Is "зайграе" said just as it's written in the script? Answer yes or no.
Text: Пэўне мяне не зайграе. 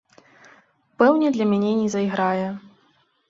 yes